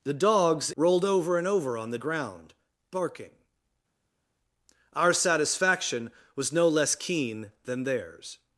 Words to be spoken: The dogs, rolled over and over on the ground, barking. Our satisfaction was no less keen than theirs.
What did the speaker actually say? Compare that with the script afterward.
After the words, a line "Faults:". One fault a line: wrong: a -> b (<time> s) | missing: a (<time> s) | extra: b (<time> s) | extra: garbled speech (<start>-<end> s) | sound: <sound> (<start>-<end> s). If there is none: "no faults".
The dogs, rolled over and over on the ground, barking. Our satisfaction was no less keen than theirs.
Faults:
no faults